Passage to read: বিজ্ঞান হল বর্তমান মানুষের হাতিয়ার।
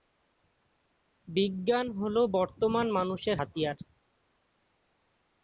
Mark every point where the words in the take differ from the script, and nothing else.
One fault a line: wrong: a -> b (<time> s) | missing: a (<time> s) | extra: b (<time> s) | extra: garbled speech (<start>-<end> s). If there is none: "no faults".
no faults